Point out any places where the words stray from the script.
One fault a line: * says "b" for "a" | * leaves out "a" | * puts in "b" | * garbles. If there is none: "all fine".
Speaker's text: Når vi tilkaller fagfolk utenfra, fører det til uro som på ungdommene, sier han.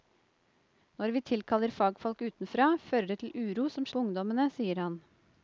all fine